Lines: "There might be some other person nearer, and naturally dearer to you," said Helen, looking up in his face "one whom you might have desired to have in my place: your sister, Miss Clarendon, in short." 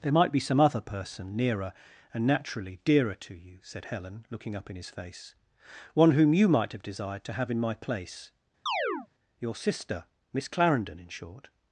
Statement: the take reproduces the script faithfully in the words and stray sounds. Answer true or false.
false